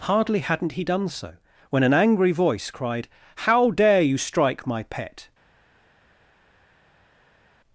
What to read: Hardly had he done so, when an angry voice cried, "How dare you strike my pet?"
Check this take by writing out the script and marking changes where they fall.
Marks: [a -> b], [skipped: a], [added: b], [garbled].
Hardly [had -> hadn't] he done so, when an angry voice cried, "How dare you strike my pet?"